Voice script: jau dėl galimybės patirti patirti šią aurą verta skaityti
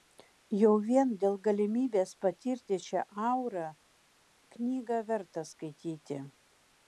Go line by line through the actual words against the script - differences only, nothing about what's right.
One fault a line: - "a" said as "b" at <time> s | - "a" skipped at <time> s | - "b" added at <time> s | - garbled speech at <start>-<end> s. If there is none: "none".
- "vien" added at 0.8 s
- "patirti" skipped at 2.8 s
- "knygą" added at 4.6 s